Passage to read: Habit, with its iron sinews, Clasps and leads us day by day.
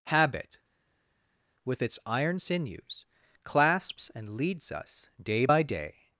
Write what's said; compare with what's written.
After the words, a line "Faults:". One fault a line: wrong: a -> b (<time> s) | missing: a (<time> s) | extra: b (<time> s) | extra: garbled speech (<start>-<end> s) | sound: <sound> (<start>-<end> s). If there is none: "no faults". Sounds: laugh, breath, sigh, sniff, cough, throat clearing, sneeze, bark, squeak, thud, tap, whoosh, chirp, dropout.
Habit, with its iron sinews, Clasps and leads us day by day.
Faults:
no faults